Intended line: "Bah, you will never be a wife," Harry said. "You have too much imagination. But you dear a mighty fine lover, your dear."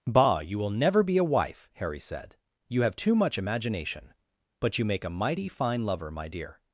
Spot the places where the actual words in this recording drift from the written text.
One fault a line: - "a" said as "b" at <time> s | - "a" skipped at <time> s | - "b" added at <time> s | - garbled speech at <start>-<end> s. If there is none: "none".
- "dear" said as "make" at 4.9 s
- "your" said as "my" at 6.1 s